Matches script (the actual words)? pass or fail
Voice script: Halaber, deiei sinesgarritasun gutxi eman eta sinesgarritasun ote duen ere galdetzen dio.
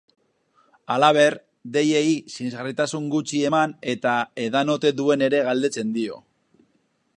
fail